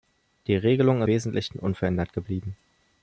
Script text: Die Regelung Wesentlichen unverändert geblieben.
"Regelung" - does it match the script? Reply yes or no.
yes